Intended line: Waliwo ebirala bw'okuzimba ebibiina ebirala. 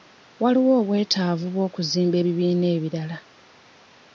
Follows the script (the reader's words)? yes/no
no